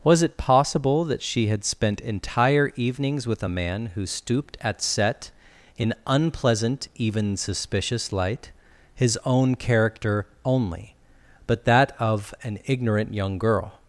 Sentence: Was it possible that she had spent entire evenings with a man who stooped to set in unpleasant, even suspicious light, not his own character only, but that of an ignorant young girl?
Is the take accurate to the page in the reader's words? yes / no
no